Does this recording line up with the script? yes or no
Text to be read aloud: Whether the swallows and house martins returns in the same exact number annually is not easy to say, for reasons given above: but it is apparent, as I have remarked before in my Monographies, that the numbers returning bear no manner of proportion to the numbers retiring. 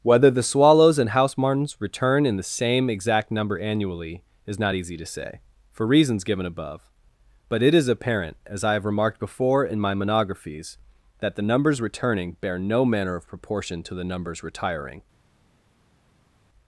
no